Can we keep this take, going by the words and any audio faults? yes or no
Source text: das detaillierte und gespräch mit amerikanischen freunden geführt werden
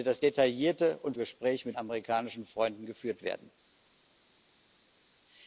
yes